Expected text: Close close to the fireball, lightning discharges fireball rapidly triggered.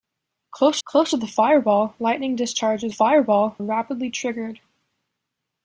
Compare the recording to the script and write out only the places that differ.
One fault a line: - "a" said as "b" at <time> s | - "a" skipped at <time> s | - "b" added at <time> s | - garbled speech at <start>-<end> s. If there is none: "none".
none